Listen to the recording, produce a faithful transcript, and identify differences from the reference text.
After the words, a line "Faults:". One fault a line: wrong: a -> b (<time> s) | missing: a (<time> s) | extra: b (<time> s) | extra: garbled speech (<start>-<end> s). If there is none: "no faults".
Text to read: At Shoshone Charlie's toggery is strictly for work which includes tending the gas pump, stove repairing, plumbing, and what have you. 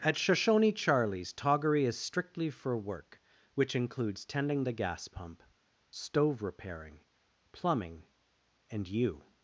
At Shoshone Charlie's toggery is strictly for work which includes tending the gas pump, stove repairing, plumbing, and you.
Faults:
missing: what have (8.9 s)